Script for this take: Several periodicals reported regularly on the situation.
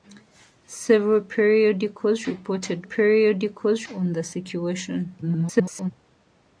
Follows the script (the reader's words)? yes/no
no